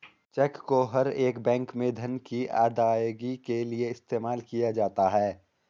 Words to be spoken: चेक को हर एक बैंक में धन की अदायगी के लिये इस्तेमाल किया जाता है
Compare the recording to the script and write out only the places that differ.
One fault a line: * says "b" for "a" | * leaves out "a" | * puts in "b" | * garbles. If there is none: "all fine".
all fine